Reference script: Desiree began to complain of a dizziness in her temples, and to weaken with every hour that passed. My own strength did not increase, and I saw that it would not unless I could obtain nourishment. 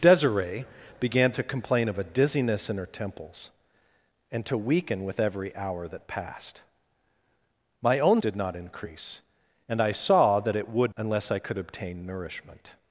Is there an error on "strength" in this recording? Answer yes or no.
yes